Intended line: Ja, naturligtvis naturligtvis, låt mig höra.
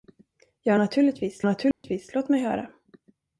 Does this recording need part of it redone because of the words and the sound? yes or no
yes